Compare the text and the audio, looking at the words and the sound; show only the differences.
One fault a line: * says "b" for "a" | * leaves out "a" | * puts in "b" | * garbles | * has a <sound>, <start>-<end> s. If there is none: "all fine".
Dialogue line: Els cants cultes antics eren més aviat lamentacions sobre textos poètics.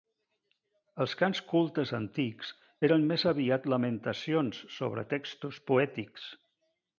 all fine